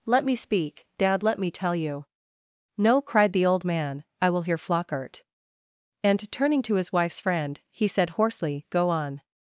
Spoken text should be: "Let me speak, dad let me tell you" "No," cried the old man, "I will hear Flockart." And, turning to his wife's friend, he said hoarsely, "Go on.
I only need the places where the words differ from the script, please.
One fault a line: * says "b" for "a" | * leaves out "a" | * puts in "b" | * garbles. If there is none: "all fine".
all fine